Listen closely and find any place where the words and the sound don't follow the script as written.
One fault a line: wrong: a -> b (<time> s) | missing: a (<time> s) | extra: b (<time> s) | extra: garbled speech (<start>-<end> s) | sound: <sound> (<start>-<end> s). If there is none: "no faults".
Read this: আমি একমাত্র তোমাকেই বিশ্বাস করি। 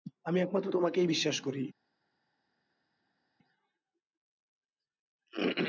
no faults